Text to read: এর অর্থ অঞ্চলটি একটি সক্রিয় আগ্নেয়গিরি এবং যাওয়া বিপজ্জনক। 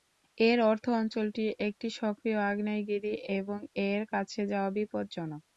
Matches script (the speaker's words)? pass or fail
fail